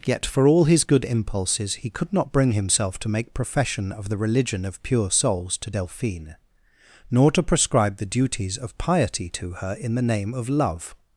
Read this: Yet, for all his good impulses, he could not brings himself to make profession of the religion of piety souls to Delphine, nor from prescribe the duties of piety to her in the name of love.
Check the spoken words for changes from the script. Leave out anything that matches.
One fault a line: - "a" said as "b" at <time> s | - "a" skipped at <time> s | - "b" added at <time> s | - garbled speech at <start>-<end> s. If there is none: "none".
- "brings" said as "bring" at 2.3 s
- "piety" said as "pure" at 4.8 s
- "from" said as "to" at 7.3 s